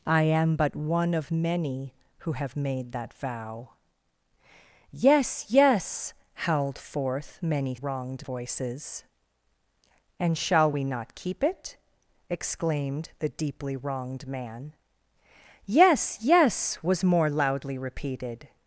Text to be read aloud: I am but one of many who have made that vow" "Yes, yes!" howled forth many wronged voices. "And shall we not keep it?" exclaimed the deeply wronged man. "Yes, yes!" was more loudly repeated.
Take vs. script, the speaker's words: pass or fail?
pass